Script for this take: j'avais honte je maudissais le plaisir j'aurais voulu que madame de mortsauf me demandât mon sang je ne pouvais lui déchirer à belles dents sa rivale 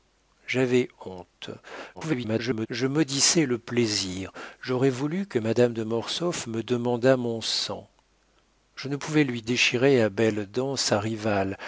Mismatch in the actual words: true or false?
true